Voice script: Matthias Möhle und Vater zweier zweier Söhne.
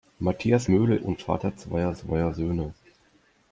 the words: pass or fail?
pass